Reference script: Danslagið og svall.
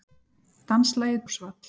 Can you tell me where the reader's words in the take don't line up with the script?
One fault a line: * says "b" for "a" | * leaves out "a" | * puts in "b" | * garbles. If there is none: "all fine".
all fine